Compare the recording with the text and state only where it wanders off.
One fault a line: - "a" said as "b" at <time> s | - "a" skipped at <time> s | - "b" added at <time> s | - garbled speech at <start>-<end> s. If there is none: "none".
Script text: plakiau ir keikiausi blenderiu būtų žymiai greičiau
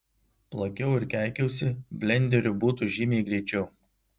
none